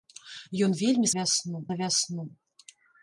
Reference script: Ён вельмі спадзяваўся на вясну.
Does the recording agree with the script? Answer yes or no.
no